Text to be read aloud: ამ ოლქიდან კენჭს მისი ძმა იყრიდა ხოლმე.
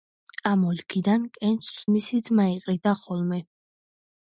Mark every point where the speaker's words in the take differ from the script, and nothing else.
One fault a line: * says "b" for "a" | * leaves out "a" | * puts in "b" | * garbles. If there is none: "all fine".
all fine